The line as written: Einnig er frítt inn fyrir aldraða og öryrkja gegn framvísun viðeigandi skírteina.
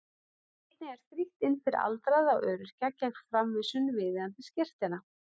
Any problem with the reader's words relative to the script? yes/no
no